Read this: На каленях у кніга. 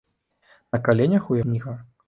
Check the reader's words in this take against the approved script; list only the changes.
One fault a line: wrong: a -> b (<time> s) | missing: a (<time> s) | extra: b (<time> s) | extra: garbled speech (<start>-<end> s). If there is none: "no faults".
no faults